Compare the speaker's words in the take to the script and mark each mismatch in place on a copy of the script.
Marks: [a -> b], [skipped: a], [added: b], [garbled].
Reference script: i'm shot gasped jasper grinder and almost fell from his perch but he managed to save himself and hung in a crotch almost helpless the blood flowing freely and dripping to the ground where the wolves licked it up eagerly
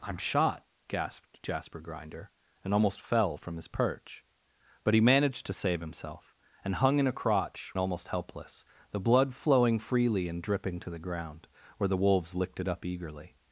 i'm shot gasped jasper grinder and almost fell from his perch but he managed to save himself and hung in a crotch almost helpless the blood flowing freely and dripping to the ground where the wolves licked it up eagerly